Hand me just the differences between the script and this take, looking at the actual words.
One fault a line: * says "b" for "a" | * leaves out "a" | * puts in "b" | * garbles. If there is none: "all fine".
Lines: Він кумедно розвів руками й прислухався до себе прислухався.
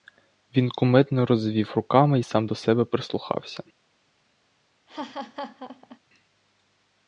* says "сам" for "прислухався"